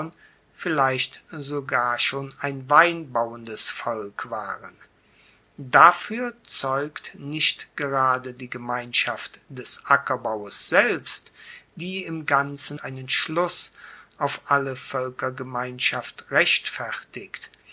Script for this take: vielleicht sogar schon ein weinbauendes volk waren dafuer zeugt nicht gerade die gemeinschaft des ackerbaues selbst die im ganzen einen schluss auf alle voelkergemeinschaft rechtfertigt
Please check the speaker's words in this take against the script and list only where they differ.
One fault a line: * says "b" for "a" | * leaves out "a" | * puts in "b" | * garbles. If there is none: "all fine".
all fine